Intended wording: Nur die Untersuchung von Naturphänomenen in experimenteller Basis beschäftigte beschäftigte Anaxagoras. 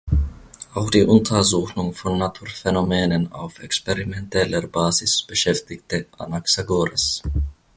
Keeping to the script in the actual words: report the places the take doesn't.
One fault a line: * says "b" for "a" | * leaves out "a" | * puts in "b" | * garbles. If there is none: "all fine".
* says "Auch" for "Nur"
* says "auf" for "in"
* leaves out "beschäftigte"